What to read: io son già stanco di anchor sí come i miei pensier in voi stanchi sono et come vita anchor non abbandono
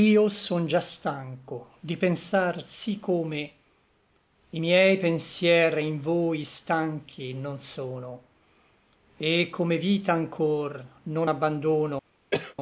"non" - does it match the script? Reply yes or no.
yes